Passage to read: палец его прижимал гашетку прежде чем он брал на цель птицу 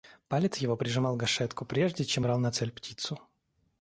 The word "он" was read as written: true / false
false